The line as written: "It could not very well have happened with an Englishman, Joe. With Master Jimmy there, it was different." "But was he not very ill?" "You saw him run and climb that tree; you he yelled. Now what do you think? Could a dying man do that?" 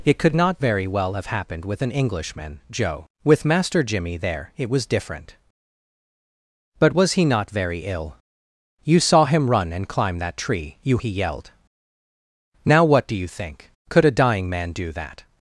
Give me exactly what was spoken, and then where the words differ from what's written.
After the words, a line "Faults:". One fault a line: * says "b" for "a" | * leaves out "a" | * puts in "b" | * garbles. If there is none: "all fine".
"It could not very well have happened with an Englishman, Joe. With Master Jimmy there, it was different." "But was he not very ill?" "You saw him run and climb that tree; you he yelled. Now what do you think? Could a dying man do that?"
Faults:
all fine